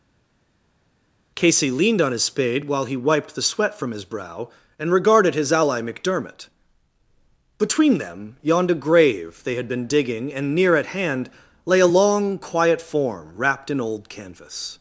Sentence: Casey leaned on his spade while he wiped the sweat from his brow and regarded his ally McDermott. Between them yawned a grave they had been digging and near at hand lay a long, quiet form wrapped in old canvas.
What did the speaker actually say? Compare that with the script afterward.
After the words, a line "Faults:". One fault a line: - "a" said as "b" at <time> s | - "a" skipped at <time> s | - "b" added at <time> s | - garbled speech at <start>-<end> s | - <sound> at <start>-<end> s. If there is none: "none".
Casey leaned on his spade while he wiped the sweat from his brow and regarded his ally McDermott. Between them yawned a grave they had been digging and near at hand lay a long, quiet form wrapped in old canvas.
Faults:
none